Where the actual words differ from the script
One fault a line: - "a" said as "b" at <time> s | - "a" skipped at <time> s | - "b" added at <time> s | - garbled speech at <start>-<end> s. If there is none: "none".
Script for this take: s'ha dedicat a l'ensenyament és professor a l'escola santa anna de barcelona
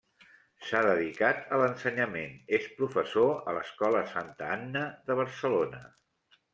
none